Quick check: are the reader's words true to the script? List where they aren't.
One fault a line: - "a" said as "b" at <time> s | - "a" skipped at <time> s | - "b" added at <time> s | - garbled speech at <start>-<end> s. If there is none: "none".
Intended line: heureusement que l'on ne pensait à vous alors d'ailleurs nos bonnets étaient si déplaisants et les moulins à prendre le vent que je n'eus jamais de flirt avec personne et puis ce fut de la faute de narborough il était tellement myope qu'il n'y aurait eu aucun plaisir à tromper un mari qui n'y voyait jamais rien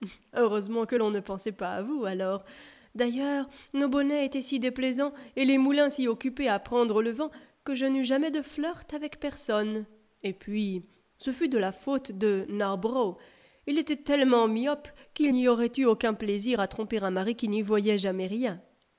- "pas" added at 1.5 s
- "si occupés" added at 5.9 s